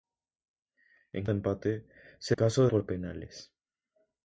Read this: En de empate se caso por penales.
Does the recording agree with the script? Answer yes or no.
yes